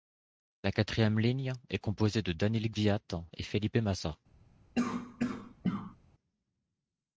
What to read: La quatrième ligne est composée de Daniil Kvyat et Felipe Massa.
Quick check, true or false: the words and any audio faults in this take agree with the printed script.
false